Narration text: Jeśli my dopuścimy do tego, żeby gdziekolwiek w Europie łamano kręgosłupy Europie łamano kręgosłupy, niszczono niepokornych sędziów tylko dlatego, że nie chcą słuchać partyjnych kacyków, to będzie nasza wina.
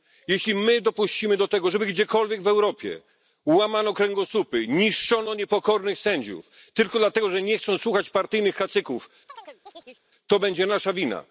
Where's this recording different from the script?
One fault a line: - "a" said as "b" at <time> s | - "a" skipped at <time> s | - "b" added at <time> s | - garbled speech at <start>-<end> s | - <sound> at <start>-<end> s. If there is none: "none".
- "Europie łamano kręgosłupy" skipped at 4.7 s
- chirp at 9.3-10.0 s